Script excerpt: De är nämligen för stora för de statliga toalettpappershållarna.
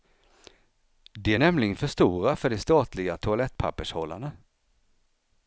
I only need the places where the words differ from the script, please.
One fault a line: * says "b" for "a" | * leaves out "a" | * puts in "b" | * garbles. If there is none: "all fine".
all fine